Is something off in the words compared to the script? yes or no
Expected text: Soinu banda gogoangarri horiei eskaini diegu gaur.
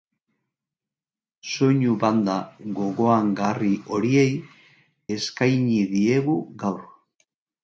no